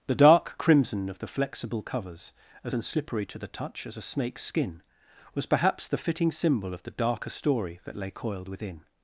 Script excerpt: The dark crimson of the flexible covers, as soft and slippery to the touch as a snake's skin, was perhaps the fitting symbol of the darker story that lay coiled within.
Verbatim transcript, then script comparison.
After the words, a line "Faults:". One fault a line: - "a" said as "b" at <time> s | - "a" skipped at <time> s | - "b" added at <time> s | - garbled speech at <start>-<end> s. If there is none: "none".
The dark crimson of the flexible covers, as and slippery to the touch as a snake's skin, was perhaps the fitting symbol of the darker story that lay coiled within.
Faults:
- "soft" skipped at 2.8 s